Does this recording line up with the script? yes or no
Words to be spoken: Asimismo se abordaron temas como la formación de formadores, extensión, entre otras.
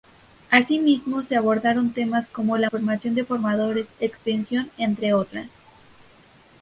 yes